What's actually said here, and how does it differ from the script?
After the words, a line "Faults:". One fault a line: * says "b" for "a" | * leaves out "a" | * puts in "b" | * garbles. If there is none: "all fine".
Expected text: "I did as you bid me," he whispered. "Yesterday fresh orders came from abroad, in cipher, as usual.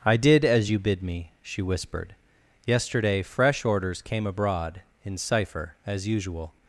"I did as you bid me," she whispered. "Yesterday fresh orders came abroad, in cipher, as usual.
Faults:
* says "she" for "he"
* leaves out "from"